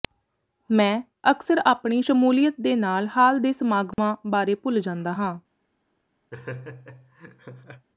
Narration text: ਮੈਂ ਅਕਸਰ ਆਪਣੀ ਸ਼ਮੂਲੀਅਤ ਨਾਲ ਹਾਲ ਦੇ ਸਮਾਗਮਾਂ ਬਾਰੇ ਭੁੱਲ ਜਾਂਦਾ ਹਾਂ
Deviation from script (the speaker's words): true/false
true